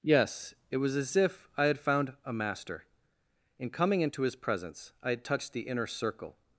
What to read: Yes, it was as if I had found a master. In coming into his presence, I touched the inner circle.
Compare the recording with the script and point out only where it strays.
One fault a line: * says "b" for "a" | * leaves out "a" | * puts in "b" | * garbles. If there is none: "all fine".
* puts in "had"